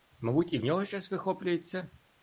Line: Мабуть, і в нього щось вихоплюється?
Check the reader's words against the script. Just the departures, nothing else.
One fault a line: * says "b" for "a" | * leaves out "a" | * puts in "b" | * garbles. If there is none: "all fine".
all fine